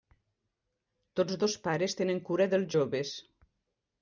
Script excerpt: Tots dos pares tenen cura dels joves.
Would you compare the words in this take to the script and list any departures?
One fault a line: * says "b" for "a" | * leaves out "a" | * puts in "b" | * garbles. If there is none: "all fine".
all fine